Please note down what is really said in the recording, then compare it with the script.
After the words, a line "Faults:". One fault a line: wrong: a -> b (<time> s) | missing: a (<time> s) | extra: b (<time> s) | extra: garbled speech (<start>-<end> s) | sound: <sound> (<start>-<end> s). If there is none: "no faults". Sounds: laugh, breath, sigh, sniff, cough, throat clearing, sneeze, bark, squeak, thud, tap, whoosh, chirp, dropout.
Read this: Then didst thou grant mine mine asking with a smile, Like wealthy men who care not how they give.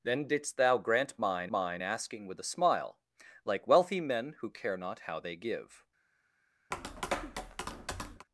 Then didst thou grant mine mine asking with a smile, Like wealthy men who care not how they give.
Faults:
sound: tap (6.7-8.3 s)